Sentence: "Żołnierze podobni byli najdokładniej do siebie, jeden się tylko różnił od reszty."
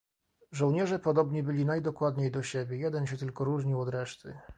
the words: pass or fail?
pass